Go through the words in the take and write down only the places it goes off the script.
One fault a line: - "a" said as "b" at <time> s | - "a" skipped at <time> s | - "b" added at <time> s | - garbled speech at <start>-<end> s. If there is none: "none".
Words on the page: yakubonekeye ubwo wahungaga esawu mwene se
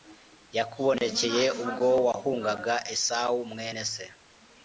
none